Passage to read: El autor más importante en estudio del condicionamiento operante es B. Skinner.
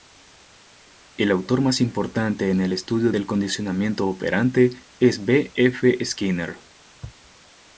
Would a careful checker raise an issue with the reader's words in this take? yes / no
yes